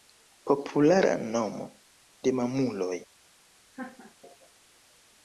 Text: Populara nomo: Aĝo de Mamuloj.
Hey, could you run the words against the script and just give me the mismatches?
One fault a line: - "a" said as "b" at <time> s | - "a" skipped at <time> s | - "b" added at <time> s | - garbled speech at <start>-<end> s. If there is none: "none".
- "Aĝo" skipped at 1.7 s